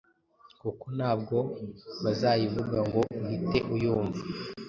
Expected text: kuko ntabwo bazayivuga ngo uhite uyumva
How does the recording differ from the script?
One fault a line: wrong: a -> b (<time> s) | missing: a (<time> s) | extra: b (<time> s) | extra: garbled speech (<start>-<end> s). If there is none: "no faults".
no faults